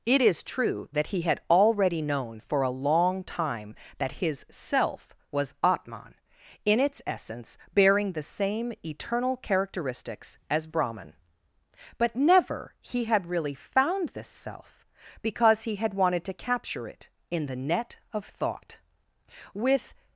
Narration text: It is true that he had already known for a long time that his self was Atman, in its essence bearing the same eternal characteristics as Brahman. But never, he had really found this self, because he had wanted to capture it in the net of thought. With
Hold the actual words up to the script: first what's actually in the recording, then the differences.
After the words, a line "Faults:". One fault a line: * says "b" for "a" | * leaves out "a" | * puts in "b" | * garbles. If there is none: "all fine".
It is true that he had already known for a long time that his self was Atman, in its essence bearing the same eternal characteristics as Brahman. But never, he had really found this self, because he had wanted to capture it in the net of thought. With
Faults:
all fine